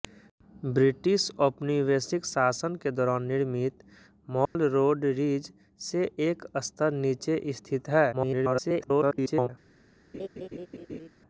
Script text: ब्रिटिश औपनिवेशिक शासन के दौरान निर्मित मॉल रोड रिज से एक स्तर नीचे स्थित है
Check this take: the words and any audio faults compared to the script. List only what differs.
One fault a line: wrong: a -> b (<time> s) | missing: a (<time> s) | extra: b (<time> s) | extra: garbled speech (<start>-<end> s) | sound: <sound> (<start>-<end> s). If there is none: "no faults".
sound: dropout (4.5-4.6 s)
extra: garbled speech (8.1-9.5 s)
sound: laugh (10.1-11.1 s)